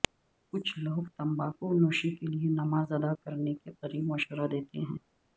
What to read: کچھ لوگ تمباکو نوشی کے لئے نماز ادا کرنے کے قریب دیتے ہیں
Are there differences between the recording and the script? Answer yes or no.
yes